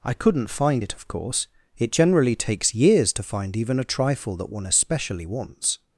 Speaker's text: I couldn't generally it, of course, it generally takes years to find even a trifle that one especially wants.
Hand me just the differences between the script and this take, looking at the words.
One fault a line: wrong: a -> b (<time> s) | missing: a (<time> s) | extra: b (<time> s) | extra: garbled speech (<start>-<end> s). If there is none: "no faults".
wrong: generally -> find (0.5 s)